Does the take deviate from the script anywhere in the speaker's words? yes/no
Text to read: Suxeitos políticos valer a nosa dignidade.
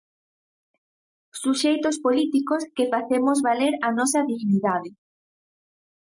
yes